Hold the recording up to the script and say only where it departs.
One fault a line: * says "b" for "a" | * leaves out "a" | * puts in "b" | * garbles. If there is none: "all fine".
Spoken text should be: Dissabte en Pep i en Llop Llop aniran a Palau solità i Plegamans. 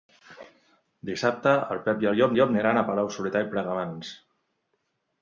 all fine